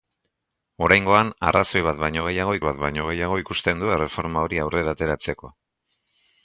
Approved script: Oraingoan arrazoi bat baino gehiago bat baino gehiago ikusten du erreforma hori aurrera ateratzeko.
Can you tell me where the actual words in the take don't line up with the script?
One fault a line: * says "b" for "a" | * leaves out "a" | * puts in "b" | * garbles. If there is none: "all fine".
all fine